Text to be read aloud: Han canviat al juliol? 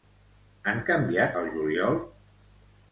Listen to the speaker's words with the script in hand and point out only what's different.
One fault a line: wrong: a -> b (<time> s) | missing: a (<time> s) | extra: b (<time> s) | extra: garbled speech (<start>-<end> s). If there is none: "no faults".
no faults